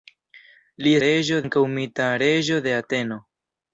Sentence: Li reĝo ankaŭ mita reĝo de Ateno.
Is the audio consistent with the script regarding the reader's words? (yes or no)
yes